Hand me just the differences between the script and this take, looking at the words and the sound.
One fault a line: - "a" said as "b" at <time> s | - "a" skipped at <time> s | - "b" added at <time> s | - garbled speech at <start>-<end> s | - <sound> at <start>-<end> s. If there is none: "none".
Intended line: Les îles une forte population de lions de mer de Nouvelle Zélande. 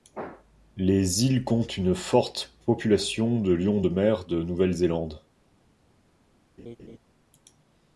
- "comptent" added at 1.4 s
- laugh at 6.6-7.0 s